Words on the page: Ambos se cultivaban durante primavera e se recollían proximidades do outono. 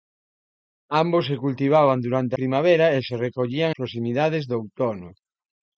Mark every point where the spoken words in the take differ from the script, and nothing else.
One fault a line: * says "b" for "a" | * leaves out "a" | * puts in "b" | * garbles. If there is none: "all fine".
all fine